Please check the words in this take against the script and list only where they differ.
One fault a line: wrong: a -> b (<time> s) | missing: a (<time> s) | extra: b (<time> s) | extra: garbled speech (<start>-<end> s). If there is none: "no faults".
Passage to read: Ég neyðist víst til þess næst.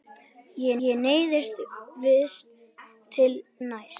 extra: ég (0.9 s)
missing: þess (3.3 s)